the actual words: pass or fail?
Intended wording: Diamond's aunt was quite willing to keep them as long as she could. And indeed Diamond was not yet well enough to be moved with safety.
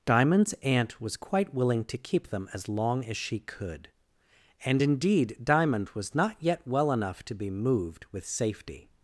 pass